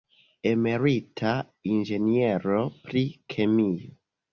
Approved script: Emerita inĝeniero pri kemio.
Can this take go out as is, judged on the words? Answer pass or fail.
pass